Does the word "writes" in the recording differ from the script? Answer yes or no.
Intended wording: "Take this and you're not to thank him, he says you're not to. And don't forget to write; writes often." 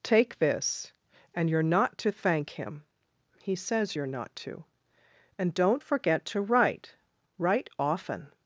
yes